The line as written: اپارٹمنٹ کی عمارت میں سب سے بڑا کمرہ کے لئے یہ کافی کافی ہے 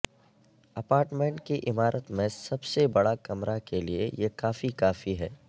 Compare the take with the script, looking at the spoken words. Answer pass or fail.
pass